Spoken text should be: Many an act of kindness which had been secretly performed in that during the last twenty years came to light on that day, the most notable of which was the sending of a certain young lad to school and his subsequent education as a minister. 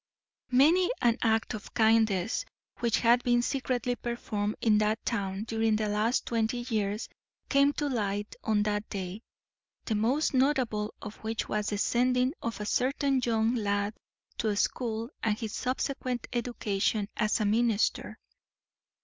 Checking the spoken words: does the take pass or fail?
fail